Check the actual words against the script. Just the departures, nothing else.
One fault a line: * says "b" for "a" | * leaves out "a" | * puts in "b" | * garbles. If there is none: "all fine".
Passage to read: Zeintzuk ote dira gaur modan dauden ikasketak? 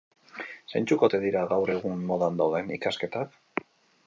* puts in "egun"